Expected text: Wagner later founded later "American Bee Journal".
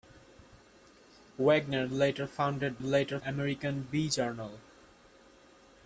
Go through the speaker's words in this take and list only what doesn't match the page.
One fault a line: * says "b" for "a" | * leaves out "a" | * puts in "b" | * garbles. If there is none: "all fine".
all fine